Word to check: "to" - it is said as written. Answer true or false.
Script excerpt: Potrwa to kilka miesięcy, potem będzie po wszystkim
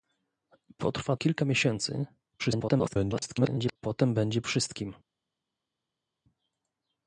false